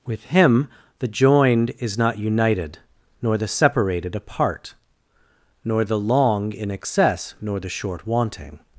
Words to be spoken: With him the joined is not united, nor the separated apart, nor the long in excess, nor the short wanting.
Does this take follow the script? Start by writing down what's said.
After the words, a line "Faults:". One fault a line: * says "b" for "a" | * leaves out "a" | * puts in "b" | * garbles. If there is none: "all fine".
With him the joined is not united, nor the separated apart, nor the long in excess, nor the short wanting.
Faults:
all fine